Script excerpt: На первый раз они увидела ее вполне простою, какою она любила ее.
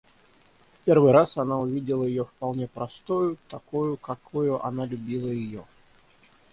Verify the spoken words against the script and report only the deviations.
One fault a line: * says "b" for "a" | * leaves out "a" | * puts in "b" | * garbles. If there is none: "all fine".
* says "В" for "На"
* says "она" for "они"
* puts in "такою"